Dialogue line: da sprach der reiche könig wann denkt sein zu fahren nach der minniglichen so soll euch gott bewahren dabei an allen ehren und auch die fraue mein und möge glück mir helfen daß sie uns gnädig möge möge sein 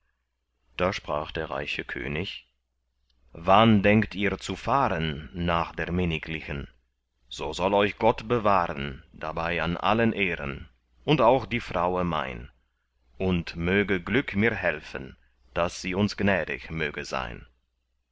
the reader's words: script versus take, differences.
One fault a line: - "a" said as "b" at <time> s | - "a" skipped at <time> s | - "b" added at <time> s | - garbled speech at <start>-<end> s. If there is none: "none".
- "sein" said as "ihr" at 4.2 s
- "möge" skipped at 17.0 s